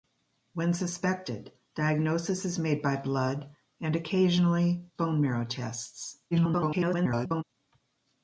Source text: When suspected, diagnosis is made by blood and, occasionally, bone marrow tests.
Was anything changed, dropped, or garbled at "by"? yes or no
no